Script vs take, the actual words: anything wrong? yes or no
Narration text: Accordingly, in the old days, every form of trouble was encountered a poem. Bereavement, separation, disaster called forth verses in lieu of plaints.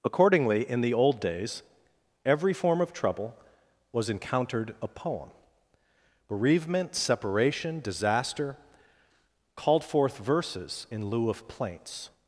no